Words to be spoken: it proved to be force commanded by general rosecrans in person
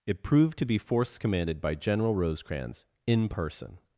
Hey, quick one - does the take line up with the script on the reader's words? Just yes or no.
yes